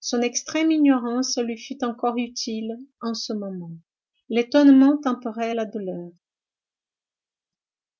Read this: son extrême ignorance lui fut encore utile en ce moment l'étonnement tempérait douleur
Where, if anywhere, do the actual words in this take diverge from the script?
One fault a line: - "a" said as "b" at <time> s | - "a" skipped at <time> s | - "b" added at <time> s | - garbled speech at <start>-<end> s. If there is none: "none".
- "la" added at 5.5 s